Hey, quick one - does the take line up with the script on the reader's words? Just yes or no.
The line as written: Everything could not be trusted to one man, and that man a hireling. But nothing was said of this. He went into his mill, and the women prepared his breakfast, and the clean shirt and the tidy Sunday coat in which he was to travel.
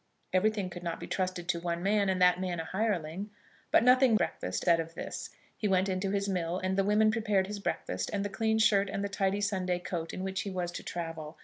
no